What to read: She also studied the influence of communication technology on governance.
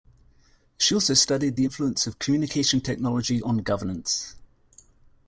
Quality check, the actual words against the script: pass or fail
pass